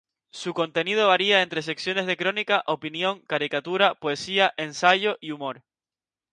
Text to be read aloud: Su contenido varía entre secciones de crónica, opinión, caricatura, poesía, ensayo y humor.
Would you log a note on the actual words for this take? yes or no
no